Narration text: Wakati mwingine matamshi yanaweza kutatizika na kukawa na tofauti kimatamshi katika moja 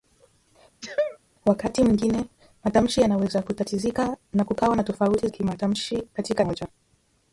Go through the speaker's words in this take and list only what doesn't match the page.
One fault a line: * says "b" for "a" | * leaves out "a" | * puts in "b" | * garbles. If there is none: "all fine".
all fine